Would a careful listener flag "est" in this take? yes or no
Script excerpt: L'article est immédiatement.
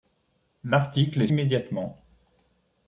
no